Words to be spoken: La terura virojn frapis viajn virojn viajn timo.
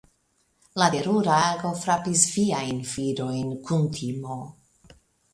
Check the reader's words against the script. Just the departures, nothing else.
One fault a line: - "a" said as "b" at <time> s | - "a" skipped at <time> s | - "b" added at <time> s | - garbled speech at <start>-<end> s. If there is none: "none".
- "virojn" said as "ago" at 1.5 s
- "viajn" said as "kun" at 3.7 s